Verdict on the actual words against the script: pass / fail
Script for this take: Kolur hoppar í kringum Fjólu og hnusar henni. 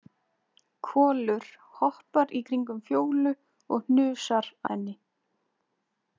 pass